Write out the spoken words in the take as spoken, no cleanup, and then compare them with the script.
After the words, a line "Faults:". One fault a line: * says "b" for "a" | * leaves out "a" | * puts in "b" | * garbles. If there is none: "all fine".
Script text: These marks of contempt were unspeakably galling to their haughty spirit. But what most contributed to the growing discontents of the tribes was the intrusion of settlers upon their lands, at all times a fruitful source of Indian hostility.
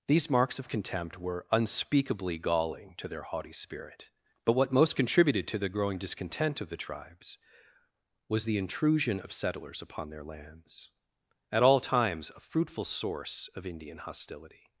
These marks of contempt were unspeakably galling to their haughty spirit. But what most contributed to the growing discontent of the tribes was the intrusion of settlers upon their lands, at all times a fruitful source of Indian hostility.
Faults:
* says "discontent" for "discontents"